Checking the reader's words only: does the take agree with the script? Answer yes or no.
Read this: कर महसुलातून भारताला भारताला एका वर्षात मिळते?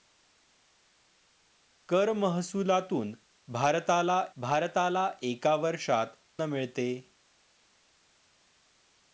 yes